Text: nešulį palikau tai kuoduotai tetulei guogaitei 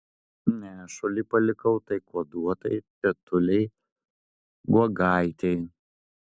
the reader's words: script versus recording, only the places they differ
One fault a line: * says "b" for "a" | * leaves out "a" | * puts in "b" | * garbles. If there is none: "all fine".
all fine